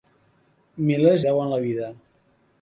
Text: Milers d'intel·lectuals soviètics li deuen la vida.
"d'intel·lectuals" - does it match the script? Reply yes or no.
no